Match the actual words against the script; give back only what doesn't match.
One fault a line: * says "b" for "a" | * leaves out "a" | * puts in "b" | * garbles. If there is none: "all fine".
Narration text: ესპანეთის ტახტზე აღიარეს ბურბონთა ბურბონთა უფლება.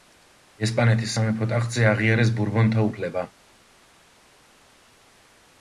* puts in "სამეფო"
* leaves out "ბურბონთა"